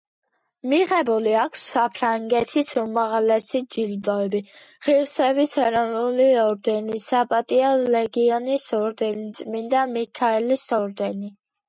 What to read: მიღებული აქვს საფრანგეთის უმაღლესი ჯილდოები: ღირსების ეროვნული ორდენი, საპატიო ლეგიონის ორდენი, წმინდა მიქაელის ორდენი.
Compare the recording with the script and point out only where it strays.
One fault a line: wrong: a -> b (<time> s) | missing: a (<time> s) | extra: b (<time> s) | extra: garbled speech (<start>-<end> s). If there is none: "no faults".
no faults